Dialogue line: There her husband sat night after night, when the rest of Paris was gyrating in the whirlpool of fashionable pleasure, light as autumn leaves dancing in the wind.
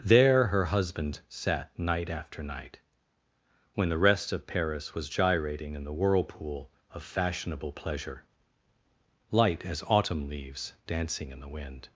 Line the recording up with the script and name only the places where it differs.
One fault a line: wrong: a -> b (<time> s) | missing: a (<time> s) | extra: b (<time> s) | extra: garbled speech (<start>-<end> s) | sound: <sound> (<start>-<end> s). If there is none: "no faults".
no faults